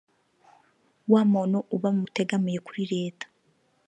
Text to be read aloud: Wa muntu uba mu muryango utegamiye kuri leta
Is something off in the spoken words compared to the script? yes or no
yes